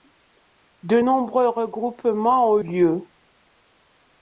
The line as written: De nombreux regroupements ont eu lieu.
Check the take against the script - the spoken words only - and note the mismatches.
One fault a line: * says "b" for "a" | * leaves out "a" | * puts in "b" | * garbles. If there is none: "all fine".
* leaves out "eu"